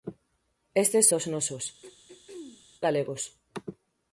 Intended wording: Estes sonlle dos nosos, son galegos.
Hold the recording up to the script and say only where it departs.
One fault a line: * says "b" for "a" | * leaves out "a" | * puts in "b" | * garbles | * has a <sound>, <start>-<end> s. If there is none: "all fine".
* leaves out "sonlle"
* leaves out "son"
* has a throat clearing, 1.8-2.6 s